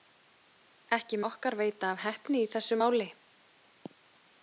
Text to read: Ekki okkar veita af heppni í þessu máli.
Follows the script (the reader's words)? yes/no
yes